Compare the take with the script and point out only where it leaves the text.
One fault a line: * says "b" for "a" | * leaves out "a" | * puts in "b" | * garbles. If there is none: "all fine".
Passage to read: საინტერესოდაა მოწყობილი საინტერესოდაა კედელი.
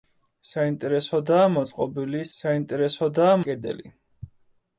all fine